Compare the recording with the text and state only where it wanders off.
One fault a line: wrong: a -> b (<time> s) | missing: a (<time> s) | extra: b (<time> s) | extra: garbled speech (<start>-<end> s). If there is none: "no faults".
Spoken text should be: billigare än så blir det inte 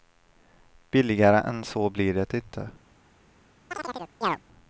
no faults